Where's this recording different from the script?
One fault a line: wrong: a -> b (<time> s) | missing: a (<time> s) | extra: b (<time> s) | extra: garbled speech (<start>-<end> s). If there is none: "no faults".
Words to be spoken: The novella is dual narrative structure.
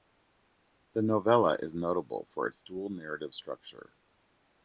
extra: notable for its (1.8 s)